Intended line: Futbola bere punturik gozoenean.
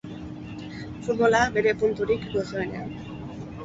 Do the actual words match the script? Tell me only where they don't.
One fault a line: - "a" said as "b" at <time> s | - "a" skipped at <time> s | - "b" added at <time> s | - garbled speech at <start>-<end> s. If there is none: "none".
none